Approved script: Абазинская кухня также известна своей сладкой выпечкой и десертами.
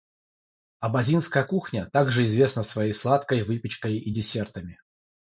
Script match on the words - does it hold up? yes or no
yes